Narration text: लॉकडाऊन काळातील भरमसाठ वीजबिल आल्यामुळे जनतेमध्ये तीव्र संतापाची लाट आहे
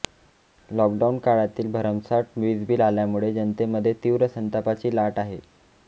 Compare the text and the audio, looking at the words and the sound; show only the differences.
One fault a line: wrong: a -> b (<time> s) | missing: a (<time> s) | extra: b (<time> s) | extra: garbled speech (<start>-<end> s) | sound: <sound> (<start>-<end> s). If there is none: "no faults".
no faults